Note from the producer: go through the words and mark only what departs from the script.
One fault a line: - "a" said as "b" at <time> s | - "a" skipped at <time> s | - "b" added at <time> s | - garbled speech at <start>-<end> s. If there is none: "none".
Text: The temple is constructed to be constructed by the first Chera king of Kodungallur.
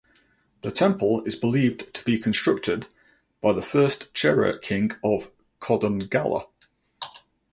- "constructed" said as "believed" at 1.4 s